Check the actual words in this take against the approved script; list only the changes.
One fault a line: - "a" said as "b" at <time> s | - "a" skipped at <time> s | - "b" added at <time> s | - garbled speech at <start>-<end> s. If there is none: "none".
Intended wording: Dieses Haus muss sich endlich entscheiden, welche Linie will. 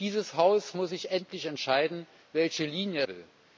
none